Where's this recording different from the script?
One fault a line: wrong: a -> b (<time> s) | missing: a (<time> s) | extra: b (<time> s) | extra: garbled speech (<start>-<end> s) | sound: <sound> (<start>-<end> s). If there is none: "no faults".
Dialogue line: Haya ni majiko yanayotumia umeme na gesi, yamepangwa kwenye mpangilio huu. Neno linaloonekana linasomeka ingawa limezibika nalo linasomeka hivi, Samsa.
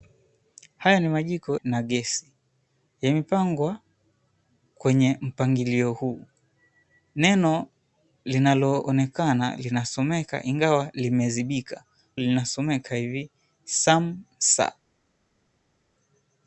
missing: yanayotumia umeme (1.6 s)
missing: nalo (11.8 s)